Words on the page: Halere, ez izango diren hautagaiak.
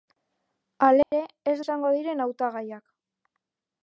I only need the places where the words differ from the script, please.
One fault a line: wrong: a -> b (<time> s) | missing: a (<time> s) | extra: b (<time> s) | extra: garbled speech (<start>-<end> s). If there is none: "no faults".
no faults